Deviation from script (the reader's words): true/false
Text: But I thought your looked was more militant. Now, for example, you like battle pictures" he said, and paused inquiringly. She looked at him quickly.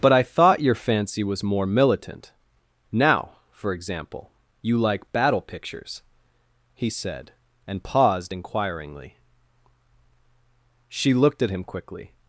true